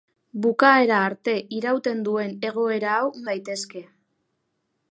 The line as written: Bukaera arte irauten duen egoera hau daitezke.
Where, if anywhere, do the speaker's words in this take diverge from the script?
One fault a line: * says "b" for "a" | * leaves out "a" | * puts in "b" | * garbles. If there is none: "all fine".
all fine